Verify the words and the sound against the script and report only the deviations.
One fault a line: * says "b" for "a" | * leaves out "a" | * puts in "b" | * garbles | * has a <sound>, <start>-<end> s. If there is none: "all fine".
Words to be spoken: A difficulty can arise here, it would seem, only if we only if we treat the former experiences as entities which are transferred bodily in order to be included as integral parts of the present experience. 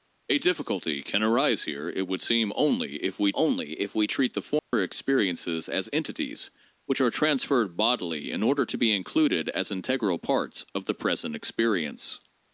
* has a dropout, 4.6-4.7 s